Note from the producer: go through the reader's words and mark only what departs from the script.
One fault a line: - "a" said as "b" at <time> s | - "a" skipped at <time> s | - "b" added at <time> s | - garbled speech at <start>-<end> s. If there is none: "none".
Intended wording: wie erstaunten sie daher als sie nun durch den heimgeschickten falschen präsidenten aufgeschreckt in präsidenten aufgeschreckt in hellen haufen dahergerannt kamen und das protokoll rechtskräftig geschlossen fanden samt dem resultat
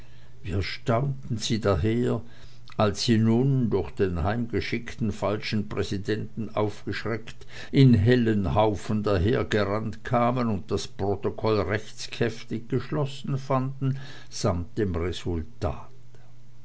- "präsidenten aufgeschreckt in" skipped at 7.9 s